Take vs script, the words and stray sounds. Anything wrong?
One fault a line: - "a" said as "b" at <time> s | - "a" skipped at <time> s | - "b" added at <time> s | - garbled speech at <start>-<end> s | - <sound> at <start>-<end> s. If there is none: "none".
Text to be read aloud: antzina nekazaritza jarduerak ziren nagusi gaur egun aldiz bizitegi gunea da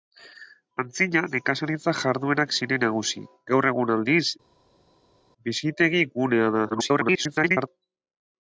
- garbled speech at 6.7-7.7 s